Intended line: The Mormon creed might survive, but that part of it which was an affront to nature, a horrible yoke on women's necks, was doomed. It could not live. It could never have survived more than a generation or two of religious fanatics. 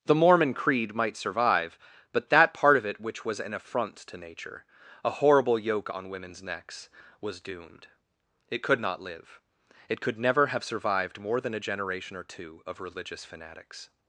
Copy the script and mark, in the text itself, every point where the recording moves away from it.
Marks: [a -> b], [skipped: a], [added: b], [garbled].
The Mormon creed might survive, but that part of it which was an affront to nature, a horrible yoke on women's necks, was doomed. It could not live. It could never have survived more than a generation or two of religious fanatics.